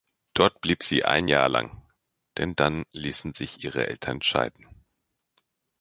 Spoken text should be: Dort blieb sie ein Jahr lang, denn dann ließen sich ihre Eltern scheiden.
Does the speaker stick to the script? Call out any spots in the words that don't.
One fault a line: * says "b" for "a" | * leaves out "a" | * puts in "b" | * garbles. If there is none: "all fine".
all fine